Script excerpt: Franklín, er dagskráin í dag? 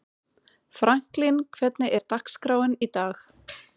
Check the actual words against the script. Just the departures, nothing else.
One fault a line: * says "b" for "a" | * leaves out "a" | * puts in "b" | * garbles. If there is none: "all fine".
* puts in "hvernig"